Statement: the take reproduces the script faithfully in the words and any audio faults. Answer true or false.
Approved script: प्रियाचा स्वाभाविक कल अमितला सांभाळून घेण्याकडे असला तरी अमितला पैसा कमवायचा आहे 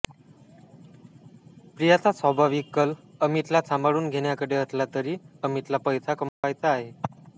false